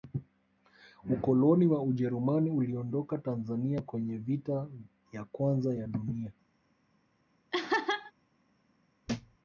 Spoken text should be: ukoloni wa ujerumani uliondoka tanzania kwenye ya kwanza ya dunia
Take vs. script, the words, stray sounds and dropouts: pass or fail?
fail